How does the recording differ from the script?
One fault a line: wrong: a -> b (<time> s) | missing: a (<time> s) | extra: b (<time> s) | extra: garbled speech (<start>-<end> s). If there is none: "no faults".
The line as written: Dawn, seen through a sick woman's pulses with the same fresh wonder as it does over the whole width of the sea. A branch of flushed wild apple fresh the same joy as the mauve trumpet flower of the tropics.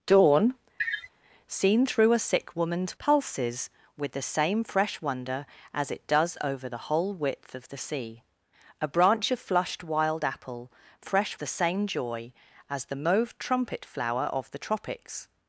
no faults